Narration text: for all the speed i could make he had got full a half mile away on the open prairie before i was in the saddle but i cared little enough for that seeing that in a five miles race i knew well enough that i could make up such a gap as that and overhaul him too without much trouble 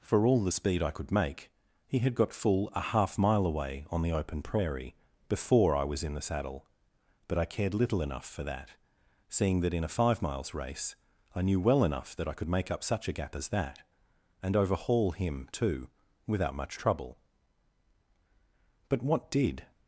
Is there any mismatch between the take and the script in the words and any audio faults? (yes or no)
yes